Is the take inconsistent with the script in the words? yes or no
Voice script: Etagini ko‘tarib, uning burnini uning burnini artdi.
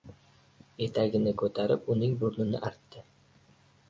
yes